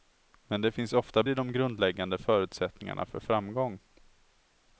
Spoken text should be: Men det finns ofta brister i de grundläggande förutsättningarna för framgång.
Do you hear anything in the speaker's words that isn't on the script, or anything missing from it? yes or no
yes